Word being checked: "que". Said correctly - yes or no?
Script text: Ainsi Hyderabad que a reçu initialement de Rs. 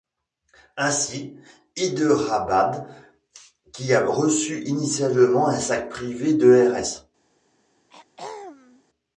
no